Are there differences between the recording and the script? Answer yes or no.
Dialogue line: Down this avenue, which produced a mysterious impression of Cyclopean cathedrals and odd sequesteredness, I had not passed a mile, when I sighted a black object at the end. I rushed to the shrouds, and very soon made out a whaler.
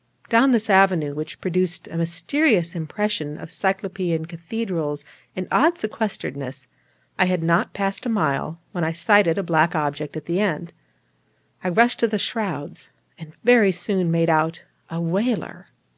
no